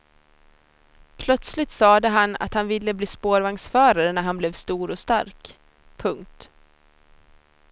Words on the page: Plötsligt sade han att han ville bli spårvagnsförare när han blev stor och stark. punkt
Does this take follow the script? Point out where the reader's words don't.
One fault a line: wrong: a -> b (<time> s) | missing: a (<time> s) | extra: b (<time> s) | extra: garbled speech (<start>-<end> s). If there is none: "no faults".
no faults